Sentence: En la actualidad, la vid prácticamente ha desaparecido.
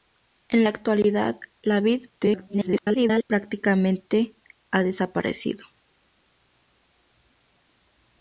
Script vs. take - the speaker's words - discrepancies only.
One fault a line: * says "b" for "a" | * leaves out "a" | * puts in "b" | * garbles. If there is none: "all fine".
* garbles